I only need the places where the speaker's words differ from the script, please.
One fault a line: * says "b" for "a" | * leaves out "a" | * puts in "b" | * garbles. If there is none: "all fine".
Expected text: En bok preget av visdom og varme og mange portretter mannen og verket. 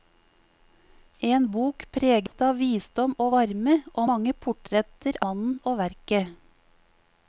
all fine